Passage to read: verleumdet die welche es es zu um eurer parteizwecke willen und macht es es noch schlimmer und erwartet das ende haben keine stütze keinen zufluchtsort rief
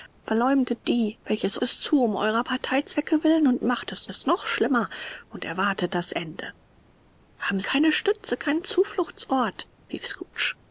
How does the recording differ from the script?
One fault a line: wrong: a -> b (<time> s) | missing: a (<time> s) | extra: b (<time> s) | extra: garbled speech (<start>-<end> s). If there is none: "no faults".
no faults